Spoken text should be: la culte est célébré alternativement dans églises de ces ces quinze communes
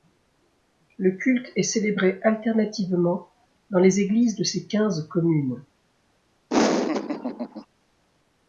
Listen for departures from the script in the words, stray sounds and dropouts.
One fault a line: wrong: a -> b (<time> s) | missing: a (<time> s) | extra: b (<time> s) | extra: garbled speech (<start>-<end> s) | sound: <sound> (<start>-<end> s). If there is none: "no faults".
wrong: la -> le (1.0 s)
extra: les (3.8 s)
missing: ces (4.7 s)
sound: laugh (6.5-7.7 s)